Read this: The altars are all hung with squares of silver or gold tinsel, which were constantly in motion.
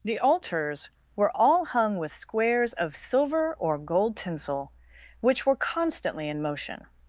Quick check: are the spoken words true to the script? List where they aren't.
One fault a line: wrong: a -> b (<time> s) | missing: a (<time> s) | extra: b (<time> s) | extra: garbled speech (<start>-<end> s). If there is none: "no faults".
wrong: are -> were (1.1 s)